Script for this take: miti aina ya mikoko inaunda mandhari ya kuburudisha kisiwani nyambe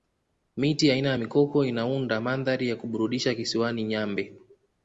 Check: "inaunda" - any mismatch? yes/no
no